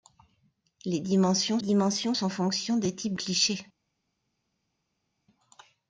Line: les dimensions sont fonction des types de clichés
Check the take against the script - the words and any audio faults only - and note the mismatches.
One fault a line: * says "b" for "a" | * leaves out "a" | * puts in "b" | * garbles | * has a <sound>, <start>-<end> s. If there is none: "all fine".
* puts in "dimensions"
* leaves out "de"